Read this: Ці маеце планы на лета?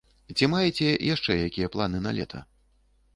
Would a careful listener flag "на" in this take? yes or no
no